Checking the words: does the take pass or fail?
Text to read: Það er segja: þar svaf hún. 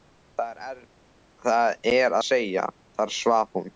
pass